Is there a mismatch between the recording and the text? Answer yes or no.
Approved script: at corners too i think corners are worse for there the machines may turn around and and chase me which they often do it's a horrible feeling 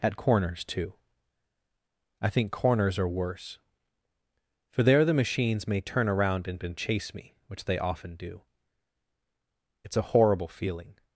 no